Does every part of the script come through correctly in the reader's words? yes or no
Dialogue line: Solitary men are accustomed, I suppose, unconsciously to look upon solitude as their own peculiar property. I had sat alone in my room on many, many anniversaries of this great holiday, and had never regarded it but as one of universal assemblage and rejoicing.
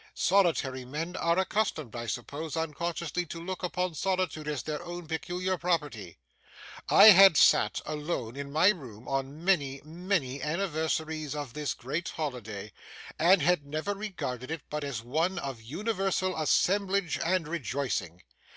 yes